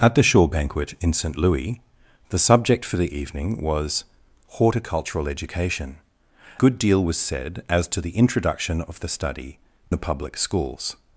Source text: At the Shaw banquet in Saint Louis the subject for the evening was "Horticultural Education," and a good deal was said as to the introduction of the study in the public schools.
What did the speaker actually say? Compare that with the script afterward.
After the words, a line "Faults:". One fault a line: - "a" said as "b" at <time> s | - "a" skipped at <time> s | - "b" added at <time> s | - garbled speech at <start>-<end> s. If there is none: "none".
At the Shaw banquet in Saint Louis the subject for the evening was "Horticultural Education," good deal was said as to the introduction of the study the public schools.
Faults:
- "and a" skipped at 6.0 s
- "in" skipped at 9.6 s